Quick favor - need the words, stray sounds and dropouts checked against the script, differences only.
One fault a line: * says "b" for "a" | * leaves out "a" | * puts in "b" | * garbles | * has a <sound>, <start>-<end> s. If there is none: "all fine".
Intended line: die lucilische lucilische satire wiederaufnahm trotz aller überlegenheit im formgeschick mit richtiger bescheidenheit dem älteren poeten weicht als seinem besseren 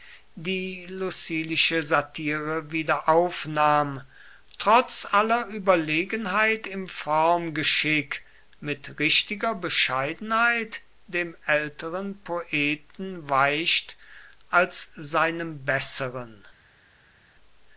* leaves out "lucilische"